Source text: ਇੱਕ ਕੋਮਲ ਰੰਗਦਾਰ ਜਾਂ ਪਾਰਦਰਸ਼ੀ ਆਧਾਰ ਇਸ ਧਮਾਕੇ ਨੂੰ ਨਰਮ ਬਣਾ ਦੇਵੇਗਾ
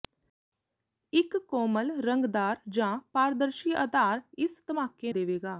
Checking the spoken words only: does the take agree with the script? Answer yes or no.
no